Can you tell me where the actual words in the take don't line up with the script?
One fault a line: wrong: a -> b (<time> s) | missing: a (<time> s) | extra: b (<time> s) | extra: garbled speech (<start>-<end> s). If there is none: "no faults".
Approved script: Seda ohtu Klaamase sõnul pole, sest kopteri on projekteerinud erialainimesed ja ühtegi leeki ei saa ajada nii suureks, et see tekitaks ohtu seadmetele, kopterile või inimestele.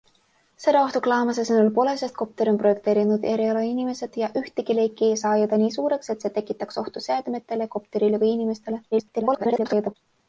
extra: garbled speech (8.9-10.0 s)